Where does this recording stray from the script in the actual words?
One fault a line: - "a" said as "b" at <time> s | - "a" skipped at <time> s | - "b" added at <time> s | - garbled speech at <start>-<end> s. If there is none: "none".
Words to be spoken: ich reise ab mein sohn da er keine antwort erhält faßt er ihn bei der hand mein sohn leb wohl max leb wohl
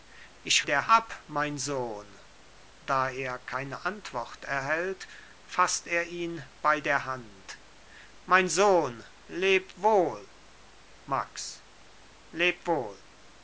- "reise" said as "der" at 0.6 s